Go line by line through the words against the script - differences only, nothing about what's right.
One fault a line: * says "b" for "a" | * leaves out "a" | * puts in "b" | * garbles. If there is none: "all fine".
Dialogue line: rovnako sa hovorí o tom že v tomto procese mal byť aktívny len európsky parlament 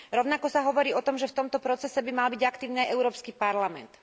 * puts in "by"
* says "aj" for "len"